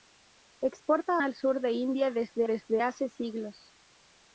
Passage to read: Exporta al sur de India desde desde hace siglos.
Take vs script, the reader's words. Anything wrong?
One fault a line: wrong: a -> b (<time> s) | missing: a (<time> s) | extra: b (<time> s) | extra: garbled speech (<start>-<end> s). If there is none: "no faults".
no faults